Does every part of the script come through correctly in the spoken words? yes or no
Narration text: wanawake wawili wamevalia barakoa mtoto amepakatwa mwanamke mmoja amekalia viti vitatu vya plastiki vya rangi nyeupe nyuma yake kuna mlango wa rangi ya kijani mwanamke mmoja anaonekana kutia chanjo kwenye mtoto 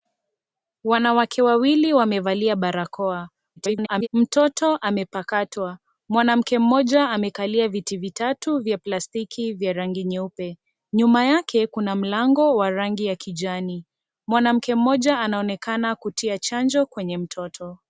no